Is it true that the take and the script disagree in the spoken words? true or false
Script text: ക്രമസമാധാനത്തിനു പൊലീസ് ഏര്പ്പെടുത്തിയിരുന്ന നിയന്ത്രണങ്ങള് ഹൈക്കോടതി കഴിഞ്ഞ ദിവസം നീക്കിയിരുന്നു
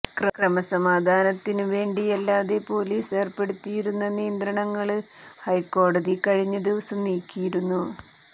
true